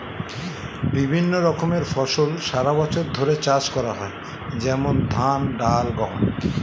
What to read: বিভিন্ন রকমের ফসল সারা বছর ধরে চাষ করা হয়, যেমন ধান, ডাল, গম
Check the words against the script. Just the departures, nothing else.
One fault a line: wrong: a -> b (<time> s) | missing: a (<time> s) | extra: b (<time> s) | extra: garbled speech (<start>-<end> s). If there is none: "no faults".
no faults